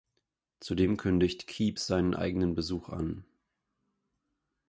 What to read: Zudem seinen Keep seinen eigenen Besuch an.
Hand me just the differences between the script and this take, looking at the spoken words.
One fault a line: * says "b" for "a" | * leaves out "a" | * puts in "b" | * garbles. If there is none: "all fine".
* says "kündigt" for "seinen"